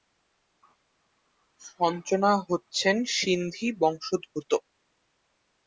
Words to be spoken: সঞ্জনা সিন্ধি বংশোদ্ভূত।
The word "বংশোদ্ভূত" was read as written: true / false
true